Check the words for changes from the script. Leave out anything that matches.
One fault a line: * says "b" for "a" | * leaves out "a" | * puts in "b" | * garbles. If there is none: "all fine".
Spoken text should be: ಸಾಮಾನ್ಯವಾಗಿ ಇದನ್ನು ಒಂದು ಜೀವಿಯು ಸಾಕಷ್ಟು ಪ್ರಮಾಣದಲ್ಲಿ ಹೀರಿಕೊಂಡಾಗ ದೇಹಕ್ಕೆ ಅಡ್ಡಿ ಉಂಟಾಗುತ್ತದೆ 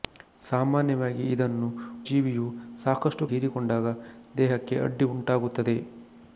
* leaves out "ಒಂದು"
* leaves out "ಪ್ರಮಾಣದಲ್ಲಿ"